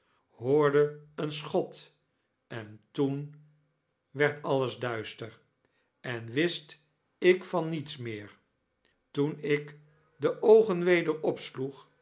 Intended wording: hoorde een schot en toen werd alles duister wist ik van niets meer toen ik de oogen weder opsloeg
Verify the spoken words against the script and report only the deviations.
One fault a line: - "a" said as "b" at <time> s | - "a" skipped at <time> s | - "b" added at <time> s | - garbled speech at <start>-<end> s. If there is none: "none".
- "en" added at 6.0 s